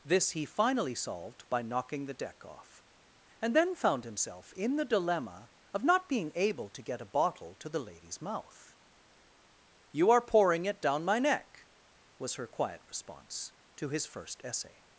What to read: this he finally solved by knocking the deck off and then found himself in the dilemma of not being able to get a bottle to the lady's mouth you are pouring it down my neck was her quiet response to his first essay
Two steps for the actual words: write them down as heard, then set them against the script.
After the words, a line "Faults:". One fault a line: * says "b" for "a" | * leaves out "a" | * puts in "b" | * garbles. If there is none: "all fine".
this he finally solved by knocking the deck off and then found himself in the dilemma of not being able to get a bottle to the lady's mouth you are pouring it down my neck was her quiet response to his first essay
Faults:
all fine